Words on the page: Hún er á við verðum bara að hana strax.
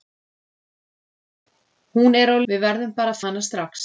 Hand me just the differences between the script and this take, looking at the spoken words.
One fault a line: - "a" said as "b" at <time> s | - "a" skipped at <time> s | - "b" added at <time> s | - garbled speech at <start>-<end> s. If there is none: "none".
none